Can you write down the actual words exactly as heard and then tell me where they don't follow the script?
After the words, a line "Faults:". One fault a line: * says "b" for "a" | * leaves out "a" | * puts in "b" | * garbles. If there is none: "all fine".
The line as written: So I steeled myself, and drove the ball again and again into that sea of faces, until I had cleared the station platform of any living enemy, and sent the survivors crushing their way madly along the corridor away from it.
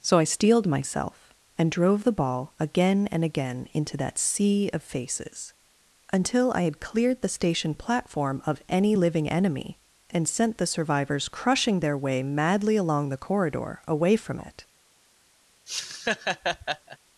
So I steeled myself, and drove the ball again and again into that sea of faces, until I had cleared the station platform of any living enemy, and sent the survivors crushing their way madly along the corridor away from it.
Faults:
all fine